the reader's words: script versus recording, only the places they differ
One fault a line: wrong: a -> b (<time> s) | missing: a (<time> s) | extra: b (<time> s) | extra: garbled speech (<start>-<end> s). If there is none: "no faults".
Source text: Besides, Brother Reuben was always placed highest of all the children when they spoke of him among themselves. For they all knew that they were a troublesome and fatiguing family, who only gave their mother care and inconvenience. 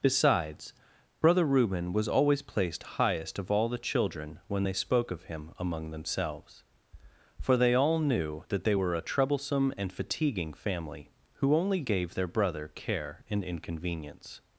wrong: mother -> brother (12.3 s)